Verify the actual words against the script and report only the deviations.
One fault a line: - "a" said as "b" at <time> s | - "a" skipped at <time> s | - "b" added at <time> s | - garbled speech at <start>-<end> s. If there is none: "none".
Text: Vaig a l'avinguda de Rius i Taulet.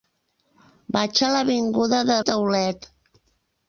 - "Rius" skipped at 2.2 s